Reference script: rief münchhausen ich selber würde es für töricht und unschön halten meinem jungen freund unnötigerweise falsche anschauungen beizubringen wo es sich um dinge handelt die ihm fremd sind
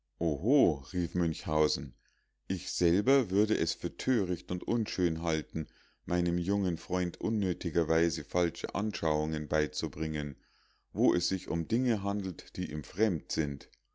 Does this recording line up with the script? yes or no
yes